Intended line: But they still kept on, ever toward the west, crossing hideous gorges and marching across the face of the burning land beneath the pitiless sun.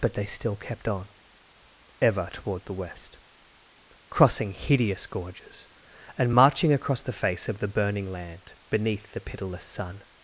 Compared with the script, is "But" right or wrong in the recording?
right